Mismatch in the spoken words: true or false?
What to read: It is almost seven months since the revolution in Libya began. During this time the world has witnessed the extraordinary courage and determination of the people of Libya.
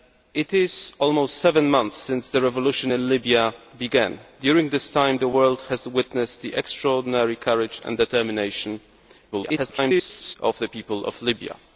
true